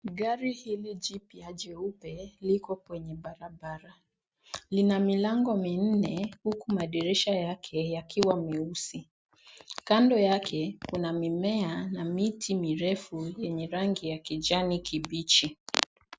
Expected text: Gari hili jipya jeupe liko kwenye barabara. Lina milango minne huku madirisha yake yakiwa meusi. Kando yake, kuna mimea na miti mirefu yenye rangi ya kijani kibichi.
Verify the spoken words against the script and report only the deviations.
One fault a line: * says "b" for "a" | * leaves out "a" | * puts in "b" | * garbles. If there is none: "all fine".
all fine